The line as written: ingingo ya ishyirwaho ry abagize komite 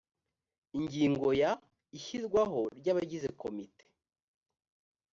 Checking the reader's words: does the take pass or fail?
pass